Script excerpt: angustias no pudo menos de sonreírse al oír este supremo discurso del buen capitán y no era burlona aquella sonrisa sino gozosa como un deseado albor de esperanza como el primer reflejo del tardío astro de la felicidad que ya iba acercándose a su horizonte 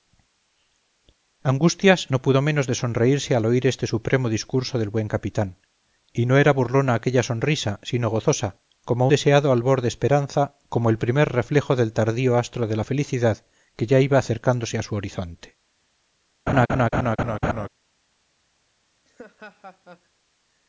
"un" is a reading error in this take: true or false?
true